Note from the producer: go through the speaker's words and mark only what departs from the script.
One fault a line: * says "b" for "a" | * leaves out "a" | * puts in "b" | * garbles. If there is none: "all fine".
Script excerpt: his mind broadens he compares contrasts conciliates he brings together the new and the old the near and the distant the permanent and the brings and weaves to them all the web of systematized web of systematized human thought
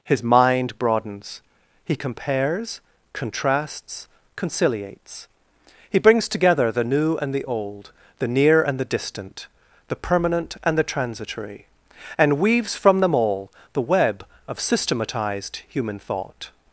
* says "transitory" for "brings"
* says "from" for "to"
* leaves out "web of systematized"